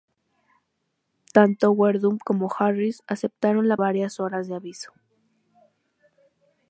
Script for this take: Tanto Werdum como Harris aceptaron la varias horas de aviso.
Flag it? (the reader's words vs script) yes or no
no